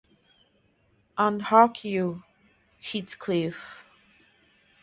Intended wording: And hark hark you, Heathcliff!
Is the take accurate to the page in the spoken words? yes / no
no